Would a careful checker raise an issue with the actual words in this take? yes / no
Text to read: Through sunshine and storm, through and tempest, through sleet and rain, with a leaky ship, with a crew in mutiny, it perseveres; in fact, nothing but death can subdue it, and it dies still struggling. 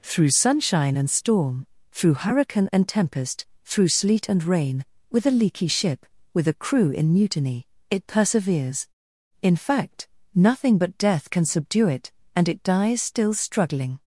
yes